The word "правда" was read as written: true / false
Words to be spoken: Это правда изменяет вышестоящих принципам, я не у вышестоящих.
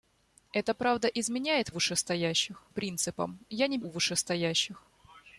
true